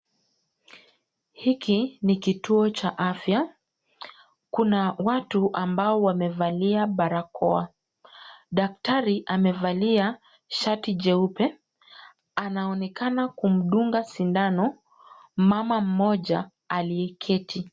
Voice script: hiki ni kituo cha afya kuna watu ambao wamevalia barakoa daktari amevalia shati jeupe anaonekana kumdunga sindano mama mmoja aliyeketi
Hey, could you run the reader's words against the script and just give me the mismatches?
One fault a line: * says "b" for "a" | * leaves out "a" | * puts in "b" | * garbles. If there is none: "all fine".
all fine